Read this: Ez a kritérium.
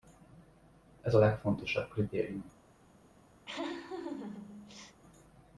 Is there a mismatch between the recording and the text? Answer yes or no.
yes